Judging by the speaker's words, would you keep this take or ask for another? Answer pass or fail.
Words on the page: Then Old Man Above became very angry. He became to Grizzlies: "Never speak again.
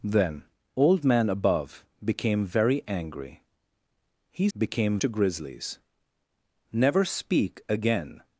pass